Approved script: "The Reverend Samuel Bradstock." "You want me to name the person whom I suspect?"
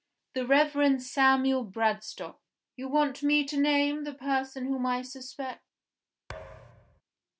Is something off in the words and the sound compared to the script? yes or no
yes